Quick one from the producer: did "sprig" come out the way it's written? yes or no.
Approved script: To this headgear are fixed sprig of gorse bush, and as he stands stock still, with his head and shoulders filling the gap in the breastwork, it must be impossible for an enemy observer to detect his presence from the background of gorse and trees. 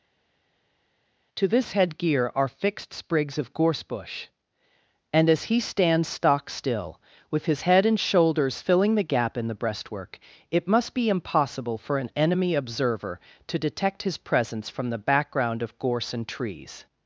no